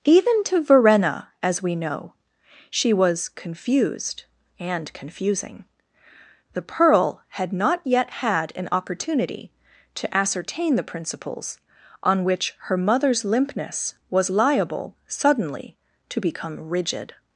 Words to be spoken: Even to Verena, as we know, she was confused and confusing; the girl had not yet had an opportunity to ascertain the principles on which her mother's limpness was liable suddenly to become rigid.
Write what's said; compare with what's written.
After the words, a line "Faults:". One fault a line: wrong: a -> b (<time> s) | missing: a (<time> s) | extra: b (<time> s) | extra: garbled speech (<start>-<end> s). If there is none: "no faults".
Even to Verena, as we know, she was confused and confusing; the pearl had not yet had an opportunity to ascertain the principles on which her mother's limpness was liable suddenly to become rigid.
Faults:
wrong: girl -> pearl (6.6 s)